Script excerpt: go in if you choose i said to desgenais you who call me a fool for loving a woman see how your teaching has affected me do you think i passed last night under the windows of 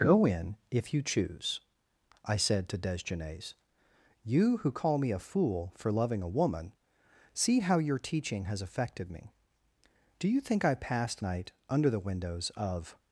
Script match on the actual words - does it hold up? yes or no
no